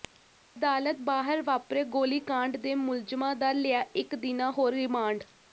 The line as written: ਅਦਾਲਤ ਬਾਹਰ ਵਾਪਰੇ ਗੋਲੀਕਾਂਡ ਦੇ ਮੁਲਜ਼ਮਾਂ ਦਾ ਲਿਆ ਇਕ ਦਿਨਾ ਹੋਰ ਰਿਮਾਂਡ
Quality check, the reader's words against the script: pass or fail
pass